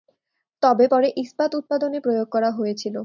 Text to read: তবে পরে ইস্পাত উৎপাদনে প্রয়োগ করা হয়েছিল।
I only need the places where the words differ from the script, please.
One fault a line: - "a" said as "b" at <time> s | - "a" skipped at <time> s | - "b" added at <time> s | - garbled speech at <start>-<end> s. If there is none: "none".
none